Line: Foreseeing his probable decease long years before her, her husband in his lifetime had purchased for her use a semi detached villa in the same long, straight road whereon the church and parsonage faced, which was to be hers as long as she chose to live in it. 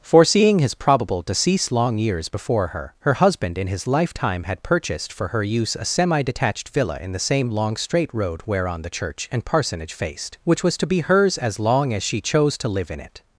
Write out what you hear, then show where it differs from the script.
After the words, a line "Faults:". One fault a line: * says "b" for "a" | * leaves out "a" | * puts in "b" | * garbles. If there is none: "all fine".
Foreseeing his probable decease long years before her, her husband in his lifetime had purchased for her use a semi detached villa in the same long, straight road whereon the church and parsonage faced, which was to be hers as long as she chose to live in it.
Faults:
all fine